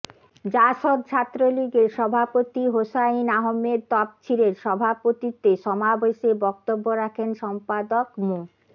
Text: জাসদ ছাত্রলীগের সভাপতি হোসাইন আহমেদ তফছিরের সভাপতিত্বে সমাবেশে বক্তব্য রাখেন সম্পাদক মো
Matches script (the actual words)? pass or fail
pass